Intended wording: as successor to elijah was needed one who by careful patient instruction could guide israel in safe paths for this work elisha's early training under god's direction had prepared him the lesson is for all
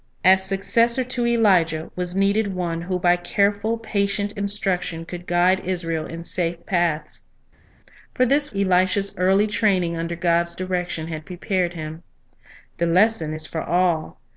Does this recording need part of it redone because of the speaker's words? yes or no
yes